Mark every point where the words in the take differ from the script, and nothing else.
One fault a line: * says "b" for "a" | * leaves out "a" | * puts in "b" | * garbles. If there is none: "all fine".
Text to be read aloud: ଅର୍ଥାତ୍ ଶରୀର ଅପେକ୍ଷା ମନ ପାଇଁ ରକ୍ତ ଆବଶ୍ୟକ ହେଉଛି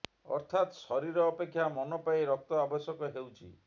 all fine